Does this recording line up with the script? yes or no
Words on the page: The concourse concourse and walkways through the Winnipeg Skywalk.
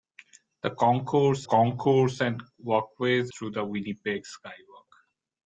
yes